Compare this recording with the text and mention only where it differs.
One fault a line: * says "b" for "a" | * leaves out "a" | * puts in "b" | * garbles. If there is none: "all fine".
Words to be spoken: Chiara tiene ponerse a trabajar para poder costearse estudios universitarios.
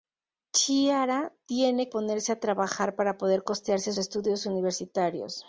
all fine